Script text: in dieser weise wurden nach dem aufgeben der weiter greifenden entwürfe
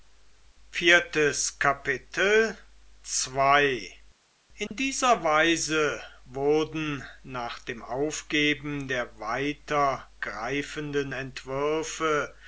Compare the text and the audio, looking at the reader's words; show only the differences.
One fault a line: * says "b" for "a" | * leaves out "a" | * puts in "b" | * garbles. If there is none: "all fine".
all fine